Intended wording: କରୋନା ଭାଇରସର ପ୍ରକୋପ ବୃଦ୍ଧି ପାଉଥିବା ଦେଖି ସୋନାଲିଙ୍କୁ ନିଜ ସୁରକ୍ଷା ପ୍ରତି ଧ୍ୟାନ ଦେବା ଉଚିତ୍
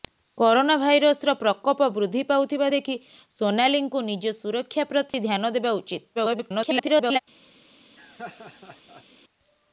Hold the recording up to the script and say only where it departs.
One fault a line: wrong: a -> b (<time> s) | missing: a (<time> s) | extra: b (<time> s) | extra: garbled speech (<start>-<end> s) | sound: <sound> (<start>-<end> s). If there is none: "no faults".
sound: dropout (5.1-5.1 s)
extra: garbled speech (6.1-7.2 s)
sound: laugh (8.0-9.0 s)